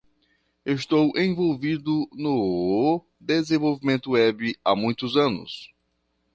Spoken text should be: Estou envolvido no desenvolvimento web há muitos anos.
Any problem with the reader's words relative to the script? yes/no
no